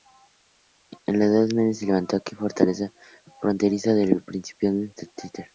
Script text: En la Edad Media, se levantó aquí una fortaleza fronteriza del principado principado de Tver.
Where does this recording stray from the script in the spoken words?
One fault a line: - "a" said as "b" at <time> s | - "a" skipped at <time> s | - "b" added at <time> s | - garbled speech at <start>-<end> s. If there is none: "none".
- "principado" skipped at 4.8 s